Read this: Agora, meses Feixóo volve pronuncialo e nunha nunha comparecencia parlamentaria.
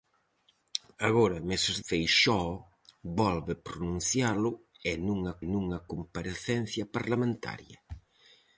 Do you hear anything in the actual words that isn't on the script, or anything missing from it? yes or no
no